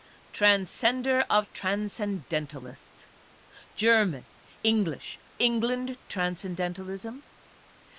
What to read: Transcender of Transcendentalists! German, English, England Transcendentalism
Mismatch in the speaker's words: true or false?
false